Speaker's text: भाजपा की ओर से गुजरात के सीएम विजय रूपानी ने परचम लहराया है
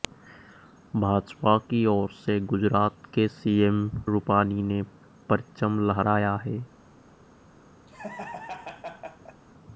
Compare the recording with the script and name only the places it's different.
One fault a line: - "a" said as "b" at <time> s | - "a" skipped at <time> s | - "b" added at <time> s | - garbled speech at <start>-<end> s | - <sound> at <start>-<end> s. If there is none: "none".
- "विजय" skipped at 3.8 s
- laugh at 7.9-9.4 s